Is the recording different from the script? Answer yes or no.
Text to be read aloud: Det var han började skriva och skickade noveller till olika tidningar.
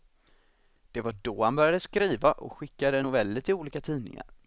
yes